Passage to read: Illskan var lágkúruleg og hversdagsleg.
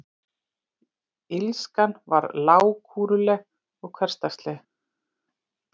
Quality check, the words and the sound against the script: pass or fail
pass